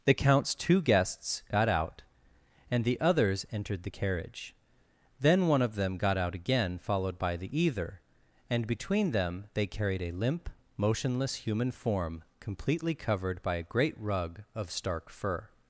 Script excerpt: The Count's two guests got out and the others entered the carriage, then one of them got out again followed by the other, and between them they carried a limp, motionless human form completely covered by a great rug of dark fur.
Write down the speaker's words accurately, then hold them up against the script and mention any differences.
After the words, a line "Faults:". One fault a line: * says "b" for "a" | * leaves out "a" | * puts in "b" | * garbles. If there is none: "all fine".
The Count's two guests got out and the others entered the carriage, then one of them got out again followed by the either, and between them they carried a limp, motionless human form completely covered by a great rug of stark fur.
Faults:
* says "either" for "other"
* says "stark" for "dark"